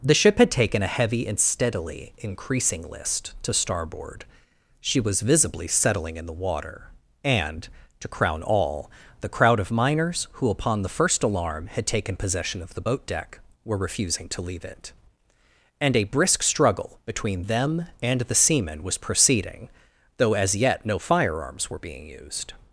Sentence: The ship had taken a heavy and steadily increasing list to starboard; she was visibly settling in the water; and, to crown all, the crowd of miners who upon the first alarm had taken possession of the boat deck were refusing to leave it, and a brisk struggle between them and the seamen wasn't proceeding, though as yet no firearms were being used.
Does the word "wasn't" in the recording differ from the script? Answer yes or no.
yes